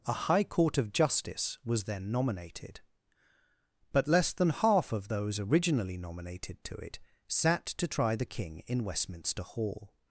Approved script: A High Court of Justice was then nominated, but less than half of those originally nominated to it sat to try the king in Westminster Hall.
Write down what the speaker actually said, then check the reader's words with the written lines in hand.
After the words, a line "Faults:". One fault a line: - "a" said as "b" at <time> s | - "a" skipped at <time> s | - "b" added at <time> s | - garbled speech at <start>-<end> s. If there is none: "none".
A High Court of Justice was then nominated, but less than half of those originally nominated to it sat to try the king in Westminster Hall.
Faults:
none